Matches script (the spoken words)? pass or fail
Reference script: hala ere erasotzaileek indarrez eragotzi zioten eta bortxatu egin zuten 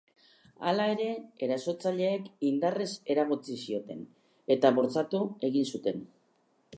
pass